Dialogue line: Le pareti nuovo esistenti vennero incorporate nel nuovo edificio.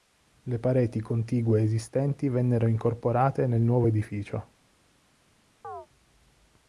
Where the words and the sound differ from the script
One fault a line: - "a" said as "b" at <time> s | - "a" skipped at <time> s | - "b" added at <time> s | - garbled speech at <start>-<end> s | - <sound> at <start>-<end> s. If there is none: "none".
- "nuovo" said as "contigue" at 1.0 s
- chirp at 5.6-5.9 s